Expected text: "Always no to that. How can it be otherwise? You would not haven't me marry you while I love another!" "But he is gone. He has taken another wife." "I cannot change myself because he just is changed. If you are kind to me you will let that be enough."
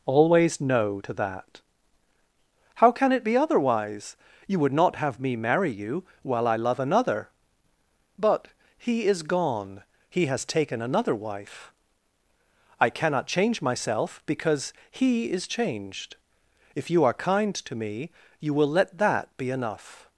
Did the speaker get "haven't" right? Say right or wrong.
wrong